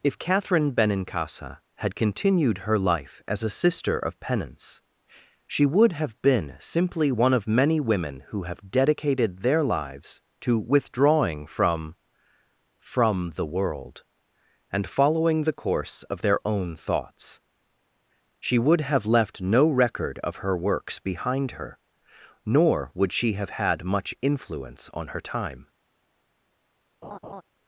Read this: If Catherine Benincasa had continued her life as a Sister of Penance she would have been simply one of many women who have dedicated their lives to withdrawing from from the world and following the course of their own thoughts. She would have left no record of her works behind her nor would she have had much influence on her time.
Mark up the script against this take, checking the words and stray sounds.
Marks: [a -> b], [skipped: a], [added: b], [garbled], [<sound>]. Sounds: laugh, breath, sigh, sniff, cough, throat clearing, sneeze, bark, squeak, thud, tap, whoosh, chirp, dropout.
If Catherine Benincasa had continued her life as a Sister of Penance she would have been simply one of many women who have dedicated their lives to withdrawing from from the world and following the course of their own thoughts. She would have left no record of her works behind her nor would she have had much influence on her time. [laugh]